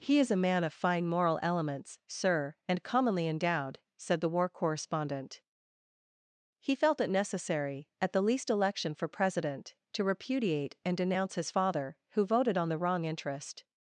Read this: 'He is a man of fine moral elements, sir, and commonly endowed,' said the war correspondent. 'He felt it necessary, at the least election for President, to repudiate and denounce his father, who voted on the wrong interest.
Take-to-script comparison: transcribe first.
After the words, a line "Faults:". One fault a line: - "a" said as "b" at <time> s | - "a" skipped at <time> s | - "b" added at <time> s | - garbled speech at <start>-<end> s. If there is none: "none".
'He is a man of fine moral elements, sir, and commonly endowed,' said the war correspondent. 'He felt it necessary, at the least election for President, to repudiate and denounce his father, who voted on the wrong interest.
Faults:
none